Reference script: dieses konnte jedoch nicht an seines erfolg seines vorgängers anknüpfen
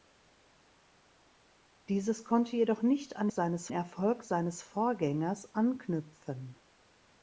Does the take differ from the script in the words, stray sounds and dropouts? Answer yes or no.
no